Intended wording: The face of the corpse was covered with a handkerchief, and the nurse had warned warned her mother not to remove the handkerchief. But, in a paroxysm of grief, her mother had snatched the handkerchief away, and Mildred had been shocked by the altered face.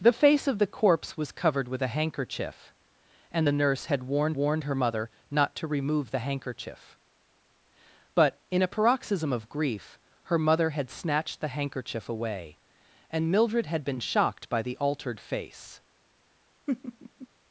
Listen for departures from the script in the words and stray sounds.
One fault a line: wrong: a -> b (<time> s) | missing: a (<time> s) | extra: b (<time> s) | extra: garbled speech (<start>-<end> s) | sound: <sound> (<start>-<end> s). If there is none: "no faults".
sound: laugh (16.7-17.3 s)